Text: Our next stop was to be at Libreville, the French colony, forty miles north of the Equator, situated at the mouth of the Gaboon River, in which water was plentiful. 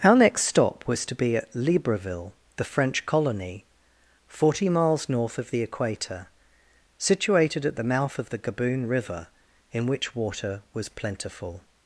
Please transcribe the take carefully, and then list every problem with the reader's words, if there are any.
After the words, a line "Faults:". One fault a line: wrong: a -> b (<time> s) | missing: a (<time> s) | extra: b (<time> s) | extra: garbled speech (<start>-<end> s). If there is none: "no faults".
Our next stop was to be at Libreville, the French colony, forty miles north of the Equator, situated at the mouth of the Gaboon River, in which water was plentiful.
Faults:
no faults